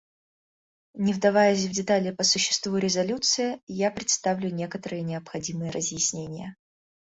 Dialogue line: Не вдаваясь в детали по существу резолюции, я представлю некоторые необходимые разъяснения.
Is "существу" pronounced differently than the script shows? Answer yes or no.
no